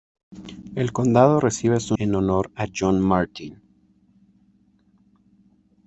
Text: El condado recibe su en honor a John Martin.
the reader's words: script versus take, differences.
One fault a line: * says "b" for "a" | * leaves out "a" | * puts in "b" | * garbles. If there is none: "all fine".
all fine